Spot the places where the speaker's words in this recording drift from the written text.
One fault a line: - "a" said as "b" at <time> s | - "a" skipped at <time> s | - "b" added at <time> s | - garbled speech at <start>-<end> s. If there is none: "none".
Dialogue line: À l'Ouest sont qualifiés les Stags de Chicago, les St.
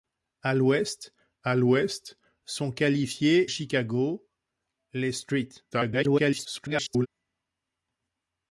- "à l'Ouest" added at 1.4 s
- "les Stags de" skipped at 3.5 s
- garbled speech at 5.7-7.1 s